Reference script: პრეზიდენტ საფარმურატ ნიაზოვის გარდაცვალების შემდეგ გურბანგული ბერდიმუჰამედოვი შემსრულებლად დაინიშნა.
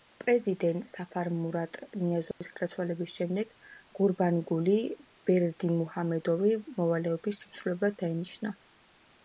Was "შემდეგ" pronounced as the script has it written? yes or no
yes